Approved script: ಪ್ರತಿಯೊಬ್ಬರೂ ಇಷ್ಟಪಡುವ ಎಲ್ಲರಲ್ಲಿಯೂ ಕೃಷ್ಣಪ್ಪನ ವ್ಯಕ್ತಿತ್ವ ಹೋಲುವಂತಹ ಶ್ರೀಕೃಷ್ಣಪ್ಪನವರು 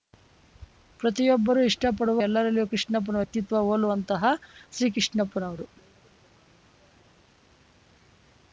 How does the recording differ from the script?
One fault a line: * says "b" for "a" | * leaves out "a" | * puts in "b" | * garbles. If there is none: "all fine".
all fine